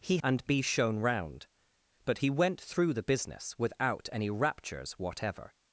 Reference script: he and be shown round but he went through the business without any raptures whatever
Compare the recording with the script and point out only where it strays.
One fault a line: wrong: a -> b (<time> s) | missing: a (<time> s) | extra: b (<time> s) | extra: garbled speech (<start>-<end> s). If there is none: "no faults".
no faults